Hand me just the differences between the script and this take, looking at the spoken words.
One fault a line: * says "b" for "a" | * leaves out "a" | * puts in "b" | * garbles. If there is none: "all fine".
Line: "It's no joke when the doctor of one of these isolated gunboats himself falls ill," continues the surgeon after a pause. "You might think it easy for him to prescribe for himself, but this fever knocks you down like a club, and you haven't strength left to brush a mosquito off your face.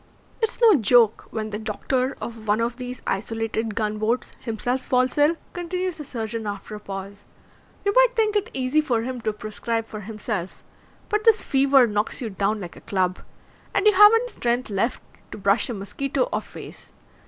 * leaves out "your"